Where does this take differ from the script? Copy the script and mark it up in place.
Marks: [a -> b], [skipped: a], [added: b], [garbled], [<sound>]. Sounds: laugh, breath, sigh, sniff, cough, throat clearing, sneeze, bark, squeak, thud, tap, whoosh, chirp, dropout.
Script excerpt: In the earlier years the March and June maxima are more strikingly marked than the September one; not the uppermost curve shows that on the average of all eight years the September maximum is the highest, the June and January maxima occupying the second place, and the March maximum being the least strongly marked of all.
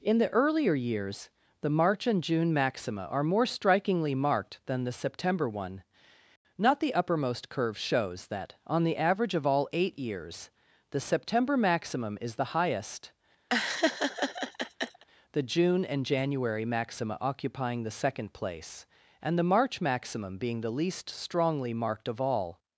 In the earlier years the March and June maxima are more strikingly marked than the September one; not the uppermost curve shows that on the average of all eight years the September maximum is the highest, [laugh] the June and January maxima occupying the second place, and the March maximum being the least strongly marked of all.